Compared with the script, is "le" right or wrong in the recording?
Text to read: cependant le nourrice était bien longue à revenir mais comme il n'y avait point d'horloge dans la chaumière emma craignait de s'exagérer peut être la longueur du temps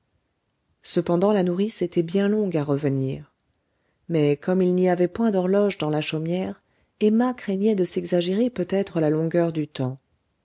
wrong